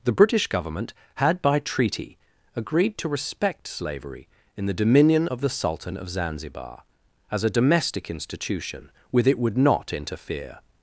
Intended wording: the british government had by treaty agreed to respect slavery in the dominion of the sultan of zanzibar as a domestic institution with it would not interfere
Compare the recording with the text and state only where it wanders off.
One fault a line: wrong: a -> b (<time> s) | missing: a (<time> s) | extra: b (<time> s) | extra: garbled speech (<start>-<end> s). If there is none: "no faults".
no faults